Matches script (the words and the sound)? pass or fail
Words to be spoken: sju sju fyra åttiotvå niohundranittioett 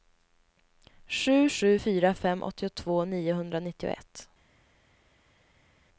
fail